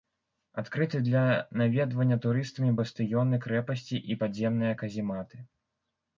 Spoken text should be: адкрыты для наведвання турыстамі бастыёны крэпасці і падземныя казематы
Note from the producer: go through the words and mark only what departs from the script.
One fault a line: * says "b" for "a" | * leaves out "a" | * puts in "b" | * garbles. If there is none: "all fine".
all fine